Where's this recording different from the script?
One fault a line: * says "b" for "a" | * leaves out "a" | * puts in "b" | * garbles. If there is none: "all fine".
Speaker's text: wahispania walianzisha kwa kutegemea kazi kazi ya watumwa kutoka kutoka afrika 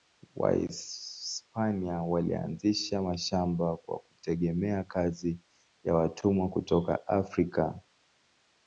* puts in "mashamba"
* leaves out "kazi"
* leaves out "kutoka"